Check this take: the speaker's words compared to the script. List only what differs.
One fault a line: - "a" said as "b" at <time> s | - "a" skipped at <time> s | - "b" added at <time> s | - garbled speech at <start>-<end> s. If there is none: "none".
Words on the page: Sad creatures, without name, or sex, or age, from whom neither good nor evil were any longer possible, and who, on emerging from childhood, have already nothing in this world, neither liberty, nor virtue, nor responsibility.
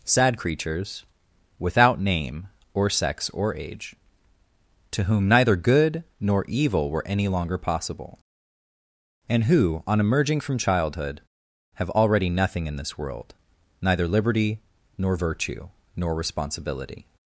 - "from" said as "to" at 4.9 s